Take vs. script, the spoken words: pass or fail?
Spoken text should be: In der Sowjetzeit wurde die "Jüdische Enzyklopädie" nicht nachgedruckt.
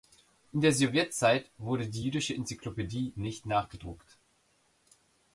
pass